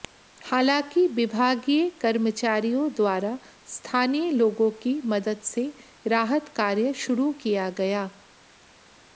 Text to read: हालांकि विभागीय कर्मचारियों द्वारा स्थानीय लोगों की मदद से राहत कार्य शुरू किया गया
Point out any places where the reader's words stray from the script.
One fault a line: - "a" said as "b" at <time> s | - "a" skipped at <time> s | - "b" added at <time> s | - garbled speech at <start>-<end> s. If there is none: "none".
none